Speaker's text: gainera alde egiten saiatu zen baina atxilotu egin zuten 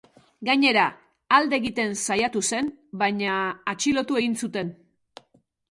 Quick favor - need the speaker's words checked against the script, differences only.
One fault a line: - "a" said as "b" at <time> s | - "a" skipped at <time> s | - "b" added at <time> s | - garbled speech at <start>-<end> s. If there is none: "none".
none